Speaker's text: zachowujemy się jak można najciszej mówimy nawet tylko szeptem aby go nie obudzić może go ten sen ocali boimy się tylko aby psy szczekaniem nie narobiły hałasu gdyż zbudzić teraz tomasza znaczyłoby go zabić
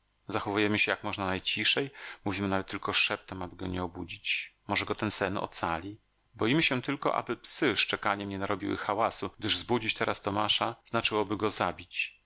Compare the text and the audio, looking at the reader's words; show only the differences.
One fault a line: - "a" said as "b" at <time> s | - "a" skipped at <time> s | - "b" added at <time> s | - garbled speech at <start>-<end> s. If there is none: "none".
none